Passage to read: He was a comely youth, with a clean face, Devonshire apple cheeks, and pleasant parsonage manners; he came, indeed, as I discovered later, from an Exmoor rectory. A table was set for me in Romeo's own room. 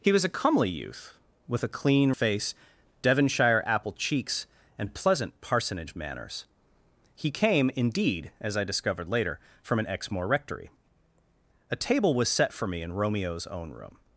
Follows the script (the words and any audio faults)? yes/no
yes